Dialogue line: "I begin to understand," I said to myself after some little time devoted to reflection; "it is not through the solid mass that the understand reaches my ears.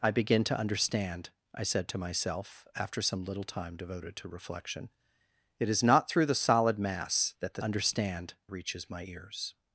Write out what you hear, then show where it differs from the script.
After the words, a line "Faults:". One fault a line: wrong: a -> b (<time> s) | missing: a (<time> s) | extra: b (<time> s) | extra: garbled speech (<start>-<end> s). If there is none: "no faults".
"I begin to understand," I said to myself after some little time devoted to reflection; "it is not through the solid mass that the understand reaches my ears.
Faults:
no faults